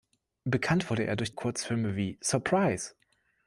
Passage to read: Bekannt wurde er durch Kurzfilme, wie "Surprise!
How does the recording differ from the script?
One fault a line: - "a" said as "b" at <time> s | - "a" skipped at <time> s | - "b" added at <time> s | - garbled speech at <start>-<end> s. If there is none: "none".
none